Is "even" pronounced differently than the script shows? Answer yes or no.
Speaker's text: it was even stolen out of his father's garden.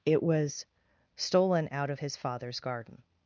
yes